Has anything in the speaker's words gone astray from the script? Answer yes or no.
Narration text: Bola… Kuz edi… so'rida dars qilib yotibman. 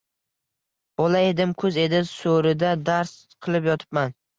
yes